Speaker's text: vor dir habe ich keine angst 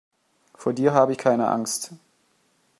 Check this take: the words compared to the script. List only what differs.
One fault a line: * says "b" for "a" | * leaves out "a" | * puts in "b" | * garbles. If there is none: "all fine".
all fine